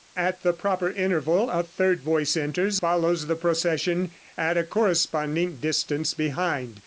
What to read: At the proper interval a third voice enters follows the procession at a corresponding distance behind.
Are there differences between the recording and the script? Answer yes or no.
no